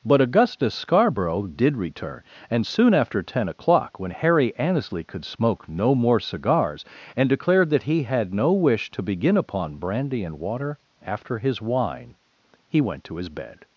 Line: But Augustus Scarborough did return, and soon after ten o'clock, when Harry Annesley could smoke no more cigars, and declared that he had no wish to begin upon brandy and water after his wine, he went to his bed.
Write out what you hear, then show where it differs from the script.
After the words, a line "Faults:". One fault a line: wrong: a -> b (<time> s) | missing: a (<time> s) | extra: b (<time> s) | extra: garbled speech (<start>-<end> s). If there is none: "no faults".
But Augustus Scarborough did return, and soon after ten o'clock, when Harry Annesley could smoke no more cigars, and declared that he had no wish to begin upon brandy and water after his wine, he went to his bed.
Faults:
no faults